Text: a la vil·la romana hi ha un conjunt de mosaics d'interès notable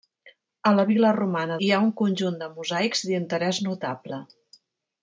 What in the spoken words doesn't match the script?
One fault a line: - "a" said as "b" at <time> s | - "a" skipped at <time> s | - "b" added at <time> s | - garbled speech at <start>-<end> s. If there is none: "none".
none